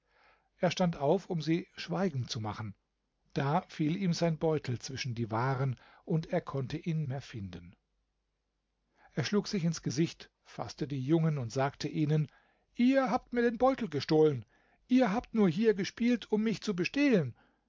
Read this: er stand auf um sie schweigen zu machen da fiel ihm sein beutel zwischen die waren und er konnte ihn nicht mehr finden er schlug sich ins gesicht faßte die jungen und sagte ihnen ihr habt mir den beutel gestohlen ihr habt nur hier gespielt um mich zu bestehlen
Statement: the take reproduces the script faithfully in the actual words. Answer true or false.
false